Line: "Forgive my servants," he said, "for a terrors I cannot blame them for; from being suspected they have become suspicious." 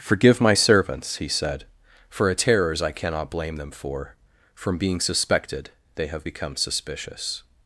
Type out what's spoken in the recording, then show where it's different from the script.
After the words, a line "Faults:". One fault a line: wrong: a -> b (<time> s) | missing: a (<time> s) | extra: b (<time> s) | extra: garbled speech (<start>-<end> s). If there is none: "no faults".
"Forgive my servants," he said, "for a terrors I cannot blame them for; from being suspected they have become suspicious."
Faults:
no faults